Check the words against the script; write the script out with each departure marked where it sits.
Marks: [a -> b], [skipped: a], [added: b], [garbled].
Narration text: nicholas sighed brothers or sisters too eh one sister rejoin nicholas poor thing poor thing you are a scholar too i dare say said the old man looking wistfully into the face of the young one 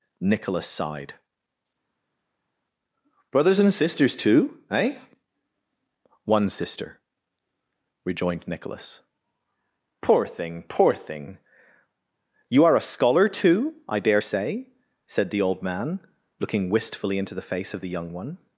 nicholas sighed brothers [or -> and] sisters too eh one sister [rejoin -> rejoined] nicholas poor thing poor thing you are a scholar too i dare say said the old man looking wistfully into the face of the young one